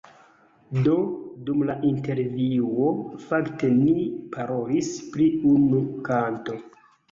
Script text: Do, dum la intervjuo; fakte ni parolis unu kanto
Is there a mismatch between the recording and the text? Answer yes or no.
yes